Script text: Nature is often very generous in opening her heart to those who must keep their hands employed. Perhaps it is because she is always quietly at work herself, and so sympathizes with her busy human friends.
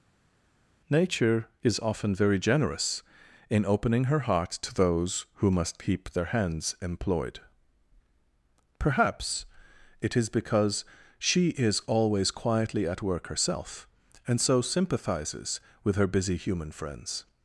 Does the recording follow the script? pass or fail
pass